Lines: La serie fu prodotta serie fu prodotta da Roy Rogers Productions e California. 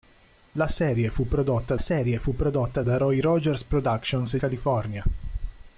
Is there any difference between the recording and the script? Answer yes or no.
no